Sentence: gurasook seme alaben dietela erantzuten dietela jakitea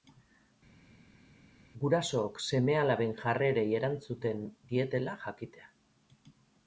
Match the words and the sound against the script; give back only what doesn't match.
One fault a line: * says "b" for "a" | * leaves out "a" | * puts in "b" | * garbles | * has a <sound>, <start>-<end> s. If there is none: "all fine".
* says "jarrerei" for "dietela"